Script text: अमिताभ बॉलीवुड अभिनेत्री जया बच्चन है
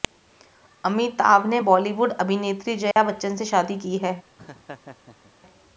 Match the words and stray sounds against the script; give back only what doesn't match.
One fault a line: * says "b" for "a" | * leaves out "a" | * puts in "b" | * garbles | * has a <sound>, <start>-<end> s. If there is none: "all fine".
* puts in "ने"
* has a dropout, 2.9-3.0 s
* puts in "से शादी की"
* has a laugh, 4.4-5.3 s